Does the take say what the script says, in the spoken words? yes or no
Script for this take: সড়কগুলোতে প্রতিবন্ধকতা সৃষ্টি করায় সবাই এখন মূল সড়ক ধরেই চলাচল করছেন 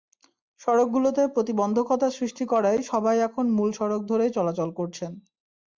yes